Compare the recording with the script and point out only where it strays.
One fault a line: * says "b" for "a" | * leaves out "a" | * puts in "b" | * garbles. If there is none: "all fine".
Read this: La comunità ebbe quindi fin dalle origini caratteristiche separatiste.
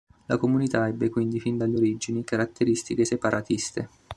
all fine